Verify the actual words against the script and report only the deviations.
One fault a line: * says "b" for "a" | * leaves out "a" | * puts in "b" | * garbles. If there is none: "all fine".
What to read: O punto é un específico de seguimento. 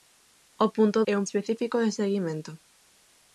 all fine